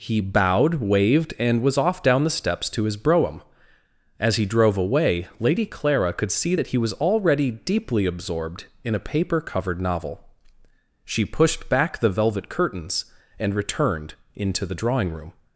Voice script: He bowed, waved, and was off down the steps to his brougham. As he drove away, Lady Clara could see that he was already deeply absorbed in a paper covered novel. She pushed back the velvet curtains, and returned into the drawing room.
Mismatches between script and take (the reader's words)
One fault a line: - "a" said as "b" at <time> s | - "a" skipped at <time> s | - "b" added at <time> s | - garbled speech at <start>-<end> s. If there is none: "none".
none